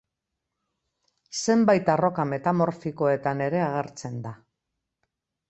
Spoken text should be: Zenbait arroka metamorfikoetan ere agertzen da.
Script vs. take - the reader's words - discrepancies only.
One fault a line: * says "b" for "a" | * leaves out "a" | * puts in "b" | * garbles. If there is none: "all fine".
all fine